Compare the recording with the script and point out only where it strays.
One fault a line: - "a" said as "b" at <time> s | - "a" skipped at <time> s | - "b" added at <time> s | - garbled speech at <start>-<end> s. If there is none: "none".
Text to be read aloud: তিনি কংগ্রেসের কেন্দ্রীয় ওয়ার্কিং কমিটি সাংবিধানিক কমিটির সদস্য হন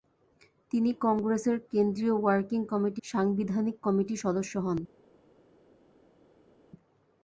none